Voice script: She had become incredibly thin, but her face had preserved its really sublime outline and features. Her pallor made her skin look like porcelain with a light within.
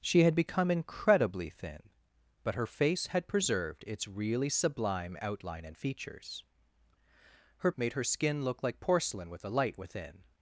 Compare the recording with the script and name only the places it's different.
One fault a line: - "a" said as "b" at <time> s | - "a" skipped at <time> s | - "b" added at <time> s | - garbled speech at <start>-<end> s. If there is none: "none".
- "pallor" skipped at 7.7 s